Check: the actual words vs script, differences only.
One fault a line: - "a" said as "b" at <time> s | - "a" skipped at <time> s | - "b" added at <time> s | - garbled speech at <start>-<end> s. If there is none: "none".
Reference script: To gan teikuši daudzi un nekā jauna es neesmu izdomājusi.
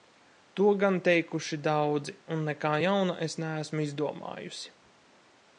none